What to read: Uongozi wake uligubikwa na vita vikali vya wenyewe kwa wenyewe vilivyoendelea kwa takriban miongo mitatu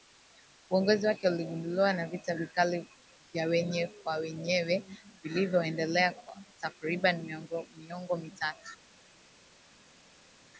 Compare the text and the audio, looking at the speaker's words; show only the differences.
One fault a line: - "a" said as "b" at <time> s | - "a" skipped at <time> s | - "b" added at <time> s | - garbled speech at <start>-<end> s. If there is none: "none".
none